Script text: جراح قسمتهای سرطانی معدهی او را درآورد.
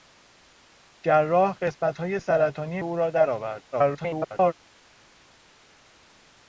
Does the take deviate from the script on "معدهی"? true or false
true